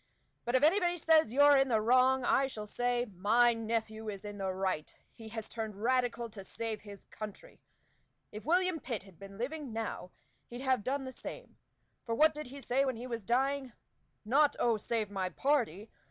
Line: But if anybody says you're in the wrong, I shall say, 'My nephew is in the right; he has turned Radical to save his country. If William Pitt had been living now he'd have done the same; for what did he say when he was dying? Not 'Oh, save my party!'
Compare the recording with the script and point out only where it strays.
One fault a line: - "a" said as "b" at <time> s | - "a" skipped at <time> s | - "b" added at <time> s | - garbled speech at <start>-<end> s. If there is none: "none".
none